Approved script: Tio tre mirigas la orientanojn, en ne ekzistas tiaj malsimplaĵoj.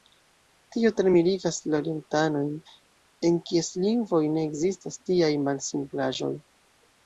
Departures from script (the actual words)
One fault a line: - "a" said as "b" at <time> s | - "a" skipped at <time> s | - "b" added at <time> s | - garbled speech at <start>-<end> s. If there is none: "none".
- "kies lingvoj" added at 3.5 s